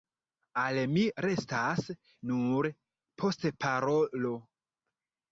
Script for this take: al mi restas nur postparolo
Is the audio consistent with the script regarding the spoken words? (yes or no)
yes